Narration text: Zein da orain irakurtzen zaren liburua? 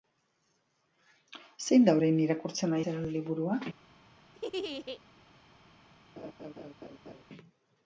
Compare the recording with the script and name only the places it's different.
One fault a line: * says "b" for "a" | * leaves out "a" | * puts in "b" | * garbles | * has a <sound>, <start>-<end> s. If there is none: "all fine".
* has a laugh, 4.3-5.0 s
* has a laugh, 6.2-7.2 s